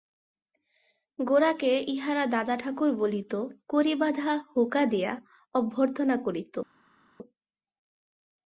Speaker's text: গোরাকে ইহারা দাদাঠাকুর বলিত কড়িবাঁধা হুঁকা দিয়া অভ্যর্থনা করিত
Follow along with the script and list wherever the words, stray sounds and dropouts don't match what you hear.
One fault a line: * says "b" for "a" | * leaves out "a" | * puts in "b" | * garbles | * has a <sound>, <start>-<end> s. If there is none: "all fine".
all fine